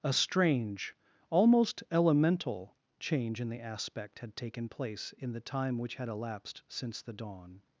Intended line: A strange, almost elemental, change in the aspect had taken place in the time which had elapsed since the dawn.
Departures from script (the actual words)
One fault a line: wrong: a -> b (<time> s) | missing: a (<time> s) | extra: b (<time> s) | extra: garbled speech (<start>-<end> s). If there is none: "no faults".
no faults